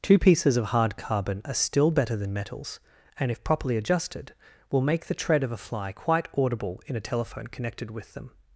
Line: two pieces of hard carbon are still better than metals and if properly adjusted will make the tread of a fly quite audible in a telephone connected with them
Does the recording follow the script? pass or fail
pass